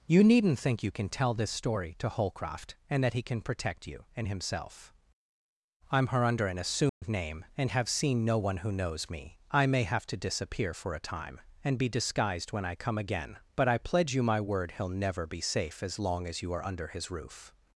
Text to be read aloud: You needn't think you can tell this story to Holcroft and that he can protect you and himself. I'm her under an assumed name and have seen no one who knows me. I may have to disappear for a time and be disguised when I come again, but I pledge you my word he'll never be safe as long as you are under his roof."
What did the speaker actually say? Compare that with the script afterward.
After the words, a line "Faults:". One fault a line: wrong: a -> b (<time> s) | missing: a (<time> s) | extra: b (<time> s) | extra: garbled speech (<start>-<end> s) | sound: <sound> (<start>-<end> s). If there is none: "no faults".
You needn't think you can tell this story to Holcroft and that he can protect you and himself. I'm her under an assumed name and have seen no one who knows me. I may have to disappear for a time and be disguised when I come again, but I pledge you my word he'll never be safe as long as you are under his roof."
Faults:
sound: dropout (6.9-7.0 s)